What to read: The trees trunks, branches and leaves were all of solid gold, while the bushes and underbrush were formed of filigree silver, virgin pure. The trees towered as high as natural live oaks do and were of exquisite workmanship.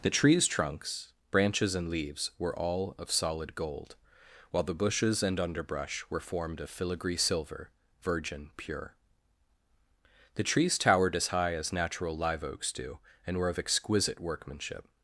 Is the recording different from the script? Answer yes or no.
no